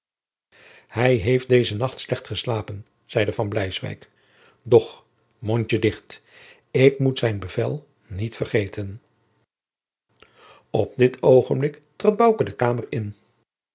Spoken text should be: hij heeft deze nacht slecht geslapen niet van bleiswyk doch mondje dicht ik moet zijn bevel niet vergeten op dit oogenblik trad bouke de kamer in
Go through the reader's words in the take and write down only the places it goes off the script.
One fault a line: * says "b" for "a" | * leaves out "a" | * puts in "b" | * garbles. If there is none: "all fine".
* says "zeide" for "niet"